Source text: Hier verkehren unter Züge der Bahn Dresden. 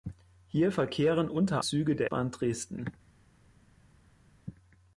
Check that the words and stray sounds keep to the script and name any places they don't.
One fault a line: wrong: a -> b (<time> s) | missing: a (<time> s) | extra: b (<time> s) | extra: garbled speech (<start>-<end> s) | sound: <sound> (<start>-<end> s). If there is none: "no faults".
no faults